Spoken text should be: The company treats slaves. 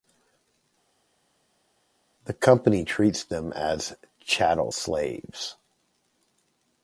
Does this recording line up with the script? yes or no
no